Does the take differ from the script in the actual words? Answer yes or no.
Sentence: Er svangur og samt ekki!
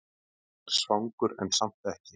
yes